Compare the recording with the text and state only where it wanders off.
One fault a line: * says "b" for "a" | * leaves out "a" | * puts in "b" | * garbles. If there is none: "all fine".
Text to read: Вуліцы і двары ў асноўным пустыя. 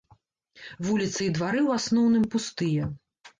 all fine